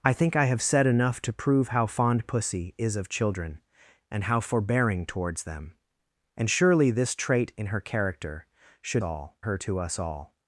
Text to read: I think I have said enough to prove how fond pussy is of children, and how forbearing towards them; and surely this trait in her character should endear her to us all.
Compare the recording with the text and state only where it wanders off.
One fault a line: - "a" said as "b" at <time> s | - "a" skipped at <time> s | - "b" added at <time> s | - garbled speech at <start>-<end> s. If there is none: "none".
- "endear" said as "all" at 9.0 s